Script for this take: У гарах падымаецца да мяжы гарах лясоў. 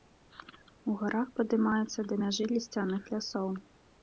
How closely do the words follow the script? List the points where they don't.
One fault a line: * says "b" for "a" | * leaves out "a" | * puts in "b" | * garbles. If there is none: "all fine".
* says "лісцяных" for "гарах"